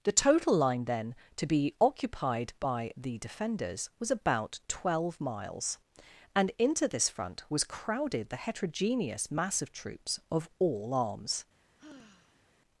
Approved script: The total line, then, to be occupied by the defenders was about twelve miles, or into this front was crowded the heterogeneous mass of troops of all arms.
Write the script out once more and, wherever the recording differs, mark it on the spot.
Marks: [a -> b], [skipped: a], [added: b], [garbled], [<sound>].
The total line, then, to be occupied by the defenders was about twelve miles, [or -> and] into this front was crowded the heterogeneous mass of troops of all arms. [sigh]